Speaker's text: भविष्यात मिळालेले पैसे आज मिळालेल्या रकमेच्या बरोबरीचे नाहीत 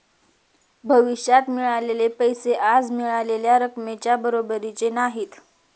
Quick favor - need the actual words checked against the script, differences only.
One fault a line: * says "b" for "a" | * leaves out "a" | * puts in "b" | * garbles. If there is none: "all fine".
all fine